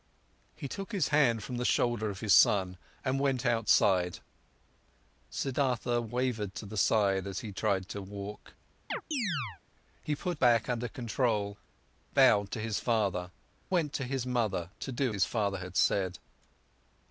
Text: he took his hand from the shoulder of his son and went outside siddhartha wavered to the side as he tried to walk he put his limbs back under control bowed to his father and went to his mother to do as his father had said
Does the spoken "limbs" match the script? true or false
false